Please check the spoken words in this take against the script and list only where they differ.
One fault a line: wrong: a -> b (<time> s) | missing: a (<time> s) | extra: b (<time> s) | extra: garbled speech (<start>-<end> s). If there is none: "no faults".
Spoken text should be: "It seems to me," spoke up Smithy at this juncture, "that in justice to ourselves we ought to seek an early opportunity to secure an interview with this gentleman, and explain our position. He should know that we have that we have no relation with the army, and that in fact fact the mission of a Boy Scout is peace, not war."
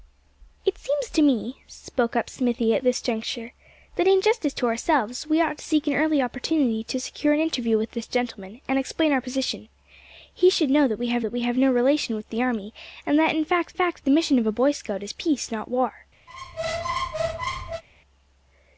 no faults